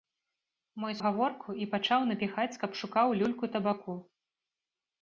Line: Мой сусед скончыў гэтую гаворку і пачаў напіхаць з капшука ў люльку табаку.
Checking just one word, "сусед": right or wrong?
wrong